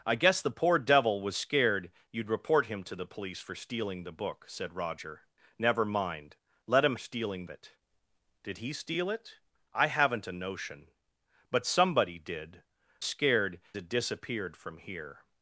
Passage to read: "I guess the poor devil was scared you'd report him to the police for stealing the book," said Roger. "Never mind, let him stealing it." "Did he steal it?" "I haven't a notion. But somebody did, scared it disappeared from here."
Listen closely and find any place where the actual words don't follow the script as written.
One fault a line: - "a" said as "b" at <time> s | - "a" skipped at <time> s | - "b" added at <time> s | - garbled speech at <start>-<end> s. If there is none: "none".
none